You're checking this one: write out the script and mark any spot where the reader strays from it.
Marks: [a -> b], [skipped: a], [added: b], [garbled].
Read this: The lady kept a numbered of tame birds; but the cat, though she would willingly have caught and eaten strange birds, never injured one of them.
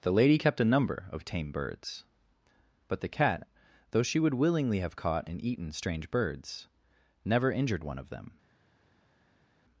The lady kept a [numbered -> number] of tame birds; but the cat, though she would willingly have caught and eaten strange birds, never injured one of them.